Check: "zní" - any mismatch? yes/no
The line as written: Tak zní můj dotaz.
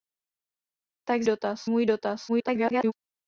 yes